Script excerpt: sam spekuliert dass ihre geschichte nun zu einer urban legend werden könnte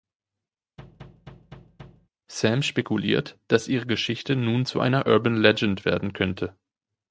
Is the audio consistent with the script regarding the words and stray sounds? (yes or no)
no